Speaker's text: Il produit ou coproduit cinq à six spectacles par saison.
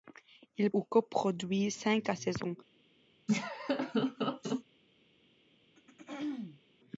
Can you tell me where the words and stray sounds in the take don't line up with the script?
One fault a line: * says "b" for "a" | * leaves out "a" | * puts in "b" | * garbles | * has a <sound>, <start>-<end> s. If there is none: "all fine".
* leaves out "produit"
* leaves out "six spectacles par"
* has a laugh, 3.3-4.6 s
* has a throat clearing, 5.8-6.6 s